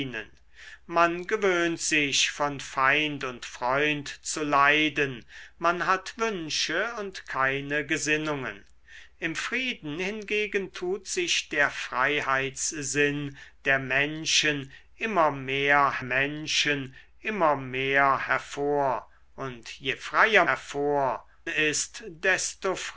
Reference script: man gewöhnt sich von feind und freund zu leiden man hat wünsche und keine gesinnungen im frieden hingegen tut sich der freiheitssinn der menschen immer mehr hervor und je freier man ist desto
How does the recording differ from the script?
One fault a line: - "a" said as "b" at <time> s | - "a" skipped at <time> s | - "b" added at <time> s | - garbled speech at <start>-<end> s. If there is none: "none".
- "menschen immer mehr" added at 16.0 s
- "man" said as "hervor" at 20.4 s